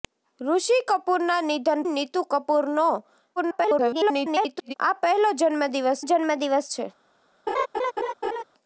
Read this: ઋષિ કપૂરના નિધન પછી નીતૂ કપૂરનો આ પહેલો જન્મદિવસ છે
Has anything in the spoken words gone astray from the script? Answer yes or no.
yes